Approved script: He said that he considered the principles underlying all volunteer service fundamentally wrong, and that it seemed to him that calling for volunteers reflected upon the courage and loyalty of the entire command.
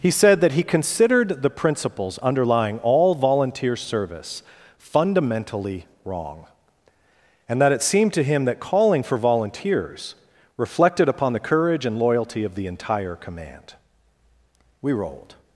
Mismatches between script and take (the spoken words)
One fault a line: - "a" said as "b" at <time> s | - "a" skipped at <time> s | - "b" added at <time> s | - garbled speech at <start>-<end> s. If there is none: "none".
- "We rolled" added at 14.8 s